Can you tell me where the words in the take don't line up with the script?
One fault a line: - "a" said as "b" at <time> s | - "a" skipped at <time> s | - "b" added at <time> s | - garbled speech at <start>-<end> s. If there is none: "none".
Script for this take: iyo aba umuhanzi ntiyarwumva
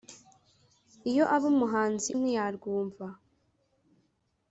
none